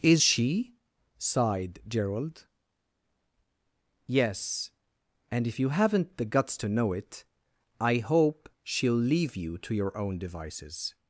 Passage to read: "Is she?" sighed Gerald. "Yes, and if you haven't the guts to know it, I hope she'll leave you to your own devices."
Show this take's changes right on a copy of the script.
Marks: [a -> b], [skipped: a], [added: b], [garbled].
"Is she?" sighed Gerald. "Yes, and if you haven't the guts to know it, I hope she'll leave you to your own devices."